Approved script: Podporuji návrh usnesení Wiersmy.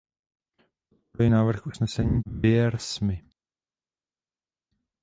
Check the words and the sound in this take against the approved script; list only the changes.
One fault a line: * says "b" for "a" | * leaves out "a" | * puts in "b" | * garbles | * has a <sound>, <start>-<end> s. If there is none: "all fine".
all fine